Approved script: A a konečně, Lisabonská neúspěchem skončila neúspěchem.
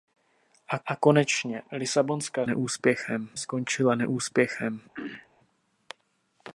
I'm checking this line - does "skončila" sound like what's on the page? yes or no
yes